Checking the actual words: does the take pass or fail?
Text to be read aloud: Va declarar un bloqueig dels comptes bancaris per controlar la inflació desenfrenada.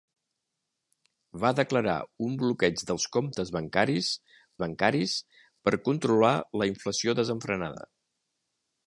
fail